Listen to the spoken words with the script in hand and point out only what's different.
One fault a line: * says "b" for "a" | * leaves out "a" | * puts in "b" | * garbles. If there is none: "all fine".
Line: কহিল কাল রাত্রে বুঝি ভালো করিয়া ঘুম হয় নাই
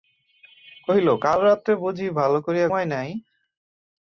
* leaves out "ঘুম"